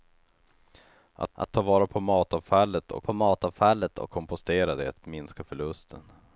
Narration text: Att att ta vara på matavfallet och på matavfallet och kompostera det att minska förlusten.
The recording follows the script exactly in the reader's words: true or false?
true